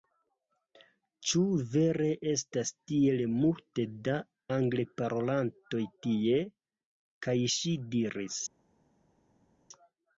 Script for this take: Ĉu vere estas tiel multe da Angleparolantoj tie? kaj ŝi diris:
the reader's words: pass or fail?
pass